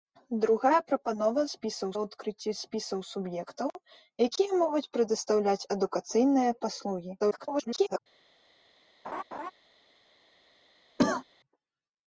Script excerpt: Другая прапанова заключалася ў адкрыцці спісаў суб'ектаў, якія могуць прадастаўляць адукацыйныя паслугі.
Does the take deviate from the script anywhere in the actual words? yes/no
yes